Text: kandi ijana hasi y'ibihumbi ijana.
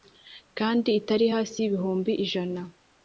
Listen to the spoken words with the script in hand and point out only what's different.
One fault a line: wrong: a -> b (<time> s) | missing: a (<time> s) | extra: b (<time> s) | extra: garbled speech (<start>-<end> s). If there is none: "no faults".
wrong: ijana -> itari (1.0 s)